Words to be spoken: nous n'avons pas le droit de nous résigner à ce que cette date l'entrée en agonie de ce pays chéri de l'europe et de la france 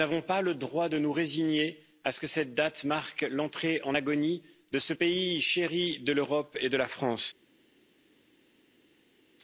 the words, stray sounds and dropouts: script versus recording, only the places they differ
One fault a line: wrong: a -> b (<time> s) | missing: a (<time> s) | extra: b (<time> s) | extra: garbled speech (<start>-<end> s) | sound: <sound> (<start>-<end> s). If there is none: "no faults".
extra: marque (2.9 s)